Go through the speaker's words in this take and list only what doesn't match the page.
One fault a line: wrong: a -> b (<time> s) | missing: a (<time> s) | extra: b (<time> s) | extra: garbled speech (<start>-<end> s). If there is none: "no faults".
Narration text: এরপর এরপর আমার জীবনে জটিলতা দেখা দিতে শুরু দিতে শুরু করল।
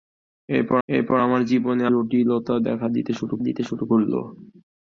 no faults